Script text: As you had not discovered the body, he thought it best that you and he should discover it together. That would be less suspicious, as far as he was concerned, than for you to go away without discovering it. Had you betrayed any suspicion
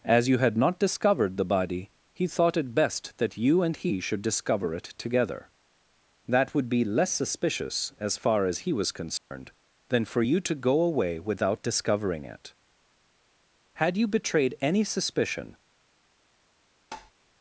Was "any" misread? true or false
false